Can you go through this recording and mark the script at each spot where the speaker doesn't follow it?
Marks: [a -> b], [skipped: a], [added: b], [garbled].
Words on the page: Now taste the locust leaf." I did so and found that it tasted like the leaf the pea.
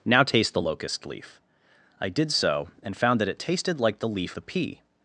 Now taste the locust leaf." I did so and found that it tasted like the leaf the pea.